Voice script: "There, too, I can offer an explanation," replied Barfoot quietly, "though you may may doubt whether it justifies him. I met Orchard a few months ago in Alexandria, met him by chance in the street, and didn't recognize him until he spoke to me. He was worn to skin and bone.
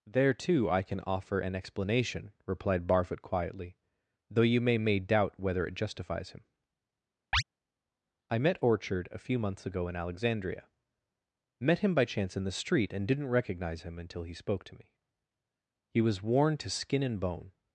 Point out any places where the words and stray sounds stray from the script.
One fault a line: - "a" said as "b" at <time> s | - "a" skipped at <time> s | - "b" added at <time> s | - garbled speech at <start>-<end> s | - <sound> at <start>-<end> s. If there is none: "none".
- chirp at 7.3-7.4 s